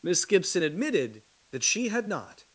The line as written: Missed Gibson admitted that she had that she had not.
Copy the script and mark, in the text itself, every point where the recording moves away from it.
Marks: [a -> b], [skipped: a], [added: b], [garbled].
[Missed -> Miss] Gibson admitted that she had [skipped: that she had] not.